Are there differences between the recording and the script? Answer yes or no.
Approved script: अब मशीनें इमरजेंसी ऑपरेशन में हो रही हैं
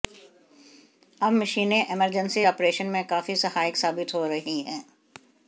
yes